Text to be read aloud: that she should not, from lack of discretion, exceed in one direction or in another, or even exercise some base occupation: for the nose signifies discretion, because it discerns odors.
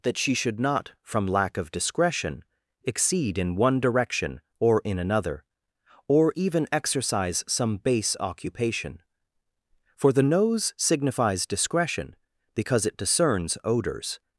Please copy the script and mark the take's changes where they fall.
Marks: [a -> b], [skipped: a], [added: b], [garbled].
that she should not, from lack of discretion, exceed in one direction or in another, or even exercise some base occupation: for the nose signifies discretion, because it discerns odors.